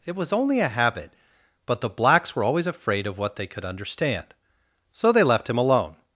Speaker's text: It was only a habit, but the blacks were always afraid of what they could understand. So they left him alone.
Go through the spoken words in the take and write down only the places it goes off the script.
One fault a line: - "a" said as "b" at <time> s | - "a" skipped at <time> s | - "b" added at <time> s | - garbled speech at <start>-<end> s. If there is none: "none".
none